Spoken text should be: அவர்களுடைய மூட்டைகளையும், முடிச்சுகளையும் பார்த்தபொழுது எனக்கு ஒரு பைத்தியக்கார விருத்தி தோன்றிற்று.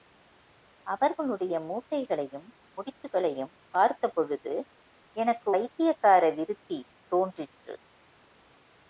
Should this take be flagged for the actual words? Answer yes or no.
yes